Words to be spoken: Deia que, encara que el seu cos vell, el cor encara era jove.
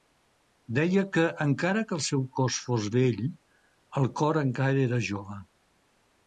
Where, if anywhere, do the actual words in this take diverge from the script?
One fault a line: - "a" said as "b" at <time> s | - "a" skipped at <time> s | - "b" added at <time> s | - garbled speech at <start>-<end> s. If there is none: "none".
- "fos" added at 2.7 s